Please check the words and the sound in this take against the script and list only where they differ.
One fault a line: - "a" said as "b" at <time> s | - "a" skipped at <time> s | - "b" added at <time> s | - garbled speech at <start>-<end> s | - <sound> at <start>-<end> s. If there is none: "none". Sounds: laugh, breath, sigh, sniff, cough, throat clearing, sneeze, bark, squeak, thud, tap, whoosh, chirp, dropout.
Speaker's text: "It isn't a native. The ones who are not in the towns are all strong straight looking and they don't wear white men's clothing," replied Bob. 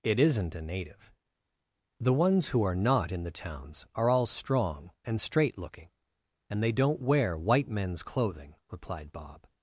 - "and" added at 5.0 s